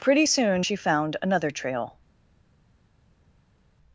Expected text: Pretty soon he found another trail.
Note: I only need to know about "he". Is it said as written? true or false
false